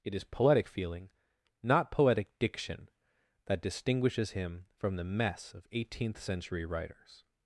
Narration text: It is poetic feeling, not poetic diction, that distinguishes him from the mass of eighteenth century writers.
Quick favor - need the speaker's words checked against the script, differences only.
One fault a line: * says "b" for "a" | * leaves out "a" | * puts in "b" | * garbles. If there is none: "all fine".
* says "mess" for "mass"